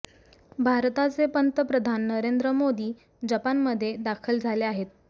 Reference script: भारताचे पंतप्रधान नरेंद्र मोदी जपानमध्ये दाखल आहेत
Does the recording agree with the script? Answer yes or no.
no